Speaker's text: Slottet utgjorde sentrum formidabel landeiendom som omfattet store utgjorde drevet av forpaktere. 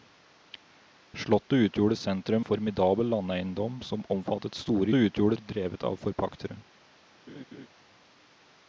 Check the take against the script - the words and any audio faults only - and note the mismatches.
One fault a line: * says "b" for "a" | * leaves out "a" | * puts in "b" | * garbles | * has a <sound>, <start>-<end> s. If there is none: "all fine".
* has a laugh, 7.3-7.7 s